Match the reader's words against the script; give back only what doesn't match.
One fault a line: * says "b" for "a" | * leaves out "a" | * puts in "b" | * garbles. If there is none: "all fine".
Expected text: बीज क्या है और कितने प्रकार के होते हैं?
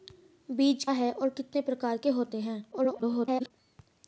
* leaves out "क्या"
* garbles